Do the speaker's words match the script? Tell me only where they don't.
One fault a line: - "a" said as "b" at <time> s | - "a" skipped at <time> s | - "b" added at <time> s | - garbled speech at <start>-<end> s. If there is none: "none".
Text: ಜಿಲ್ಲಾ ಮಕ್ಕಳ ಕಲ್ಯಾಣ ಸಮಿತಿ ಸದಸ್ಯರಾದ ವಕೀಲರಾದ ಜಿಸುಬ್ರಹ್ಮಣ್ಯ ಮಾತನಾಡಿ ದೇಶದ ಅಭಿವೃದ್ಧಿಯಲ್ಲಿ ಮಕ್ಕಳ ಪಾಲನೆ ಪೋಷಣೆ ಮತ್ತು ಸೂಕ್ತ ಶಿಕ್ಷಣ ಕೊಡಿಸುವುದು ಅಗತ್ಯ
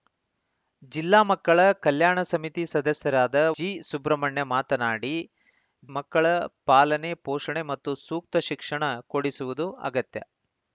- "ವಕೀಲರಾದ" skipped at 3.4 s
- "ದೇಶದ ಅಭಿವೃದ್ಧಿಯಲ್ಲಿ" skipped at 5.1 s